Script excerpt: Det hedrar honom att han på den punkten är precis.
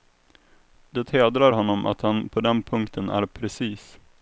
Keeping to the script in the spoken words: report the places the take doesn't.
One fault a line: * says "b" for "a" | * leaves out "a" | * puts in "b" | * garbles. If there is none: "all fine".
all fine